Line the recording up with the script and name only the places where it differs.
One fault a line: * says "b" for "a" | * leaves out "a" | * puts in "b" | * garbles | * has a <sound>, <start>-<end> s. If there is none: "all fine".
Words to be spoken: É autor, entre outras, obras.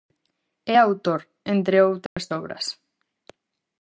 * has a dropout, 2.1-2.2 s